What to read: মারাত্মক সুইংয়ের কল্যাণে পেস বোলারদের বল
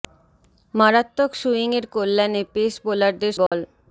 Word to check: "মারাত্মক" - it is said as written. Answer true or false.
true